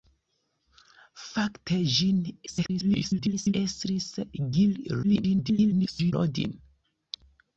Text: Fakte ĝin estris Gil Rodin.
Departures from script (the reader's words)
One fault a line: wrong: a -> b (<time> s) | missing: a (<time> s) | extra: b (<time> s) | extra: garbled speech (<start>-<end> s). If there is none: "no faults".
extra: garbled speech (2.5-3.5 s)
extra: garbled speech (5.0-6.1 s)